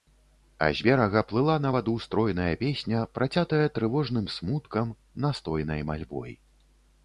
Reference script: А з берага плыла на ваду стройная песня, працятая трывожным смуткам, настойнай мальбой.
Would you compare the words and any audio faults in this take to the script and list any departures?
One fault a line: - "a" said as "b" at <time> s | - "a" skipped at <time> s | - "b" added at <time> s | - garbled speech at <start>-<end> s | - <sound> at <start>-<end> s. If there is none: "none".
none